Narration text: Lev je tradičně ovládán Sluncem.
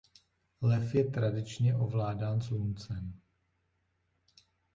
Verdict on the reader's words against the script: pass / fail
pass